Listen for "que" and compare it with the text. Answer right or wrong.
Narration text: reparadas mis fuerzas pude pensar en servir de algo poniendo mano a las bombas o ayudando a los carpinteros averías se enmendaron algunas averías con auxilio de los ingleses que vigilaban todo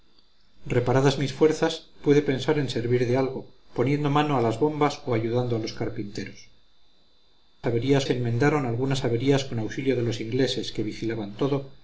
right